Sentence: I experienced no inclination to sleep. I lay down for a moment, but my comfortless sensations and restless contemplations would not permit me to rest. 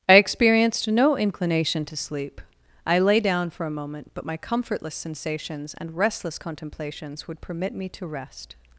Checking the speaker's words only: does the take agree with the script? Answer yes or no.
no